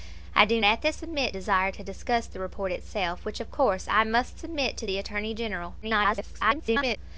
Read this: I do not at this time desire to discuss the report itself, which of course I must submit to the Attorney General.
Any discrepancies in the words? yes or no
yes